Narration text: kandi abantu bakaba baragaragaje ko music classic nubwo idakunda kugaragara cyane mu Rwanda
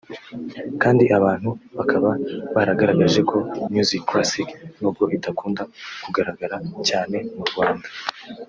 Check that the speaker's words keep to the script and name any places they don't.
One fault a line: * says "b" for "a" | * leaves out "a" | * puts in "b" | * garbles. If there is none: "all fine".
all fine